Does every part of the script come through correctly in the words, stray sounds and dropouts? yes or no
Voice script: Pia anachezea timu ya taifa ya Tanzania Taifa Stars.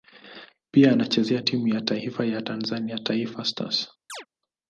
no